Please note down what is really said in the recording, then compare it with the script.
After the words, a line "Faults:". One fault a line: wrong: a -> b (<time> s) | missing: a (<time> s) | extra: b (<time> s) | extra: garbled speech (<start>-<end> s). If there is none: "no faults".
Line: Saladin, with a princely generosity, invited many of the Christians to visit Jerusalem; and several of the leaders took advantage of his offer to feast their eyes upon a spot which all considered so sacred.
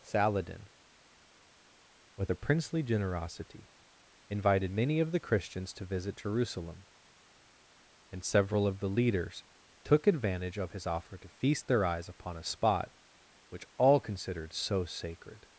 Saladin, with a princely generosity, invited many of the Christians to visit Jerusalem; and several of the leaders took advantage of his offer to feast their eyes upon a spot which all considered so sacred.
Faults:
no faults